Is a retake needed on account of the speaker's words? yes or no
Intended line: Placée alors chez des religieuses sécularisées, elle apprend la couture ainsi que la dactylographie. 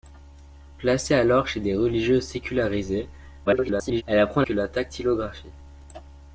yes